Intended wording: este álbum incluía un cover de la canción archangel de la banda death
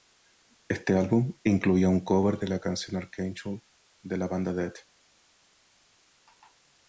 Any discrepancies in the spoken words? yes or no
no